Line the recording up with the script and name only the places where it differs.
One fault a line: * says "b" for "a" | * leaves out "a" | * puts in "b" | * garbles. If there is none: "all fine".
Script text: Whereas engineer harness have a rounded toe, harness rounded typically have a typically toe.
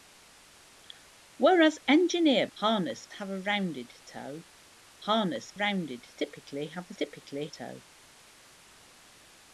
all fine